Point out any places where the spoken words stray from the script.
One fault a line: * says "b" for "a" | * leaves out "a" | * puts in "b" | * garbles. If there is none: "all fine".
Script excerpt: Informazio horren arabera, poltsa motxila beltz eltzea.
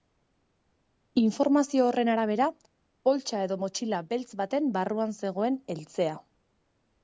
* puts in "edo"
* puts in "baten barruan zegoen"